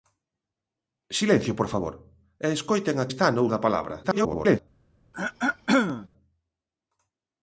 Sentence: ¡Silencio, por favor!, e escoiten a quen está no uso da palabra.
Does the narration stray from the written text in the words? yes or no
yes